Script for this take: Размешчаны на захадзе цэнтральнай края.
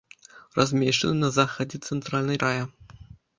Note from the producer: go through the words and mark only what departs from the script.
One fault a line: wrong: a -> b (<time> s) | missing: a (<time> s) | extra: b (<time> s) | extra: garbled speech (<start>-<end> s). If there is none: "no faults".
no faults